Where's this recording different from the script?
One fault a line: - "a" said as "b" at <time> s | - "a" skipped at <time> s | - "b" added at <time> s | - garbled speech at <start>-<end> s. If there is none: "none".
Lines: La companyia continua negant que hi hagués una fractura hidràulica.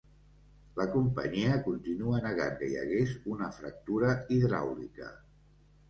none